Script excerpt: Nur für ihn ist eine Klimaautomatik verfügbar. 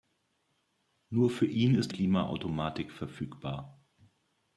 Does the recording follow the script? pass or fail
fail